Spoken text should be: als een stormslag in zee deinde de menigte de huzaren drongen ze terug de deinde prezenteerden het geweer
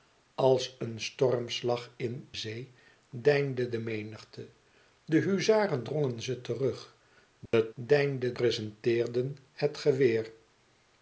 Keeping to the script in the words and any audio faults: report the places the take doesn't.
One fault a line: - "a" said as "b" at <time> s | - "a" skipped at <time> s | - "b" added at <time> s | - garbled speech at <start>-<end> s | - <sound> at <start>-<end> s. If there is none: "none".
- dropout at 7.5-7.5 s